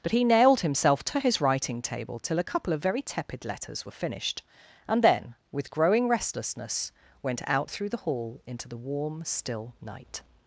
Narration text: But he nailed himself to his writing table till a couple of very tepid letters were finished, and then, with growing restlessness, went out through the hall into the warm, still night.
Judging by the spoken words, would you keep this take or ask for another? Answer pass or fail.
pass